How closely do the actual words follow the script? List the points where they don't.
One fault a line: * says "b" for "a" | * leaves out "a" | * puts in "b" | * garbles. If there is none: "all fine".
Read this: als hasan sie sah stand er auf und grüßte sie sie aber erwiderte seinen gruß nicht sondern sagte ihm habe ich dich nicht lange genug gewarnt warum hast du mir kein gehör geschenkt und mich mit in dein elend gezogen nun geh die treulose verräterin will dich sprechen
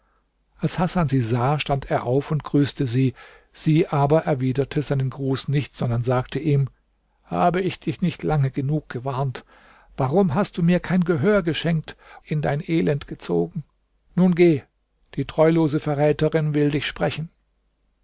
* leaves out "und mich mit"